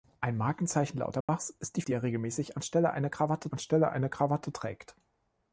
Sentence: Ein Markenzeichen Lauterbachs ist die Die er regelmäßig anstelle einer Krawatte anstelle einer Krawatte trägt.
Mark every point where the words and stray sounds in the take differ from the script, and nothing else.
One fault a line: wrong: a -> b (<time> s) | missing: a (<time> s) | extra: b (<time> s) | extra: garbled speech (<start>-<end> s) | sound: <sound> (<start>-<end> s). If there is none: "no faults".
sound: dropout (1.2-1.3 s)